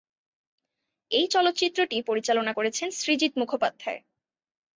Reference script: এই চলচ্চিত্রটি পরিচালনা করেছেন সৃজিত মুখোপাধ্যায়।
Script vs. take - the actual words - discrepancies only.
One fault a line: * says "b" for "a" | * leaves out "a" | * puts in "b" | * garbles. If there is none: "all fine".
all fine